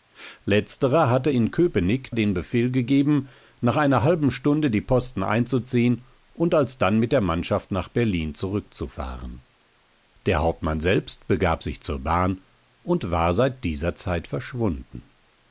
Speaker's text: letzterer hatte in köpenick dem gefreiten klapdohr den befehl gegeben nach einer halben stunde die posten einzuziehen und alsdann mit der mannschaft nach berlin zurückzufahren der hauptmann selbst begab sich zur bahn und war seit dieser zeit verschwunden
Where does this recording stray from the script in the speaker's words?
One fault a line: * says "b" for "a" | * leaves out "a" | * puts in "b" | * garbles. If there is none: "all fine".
* leaves out "dem gefreiten klapdohr"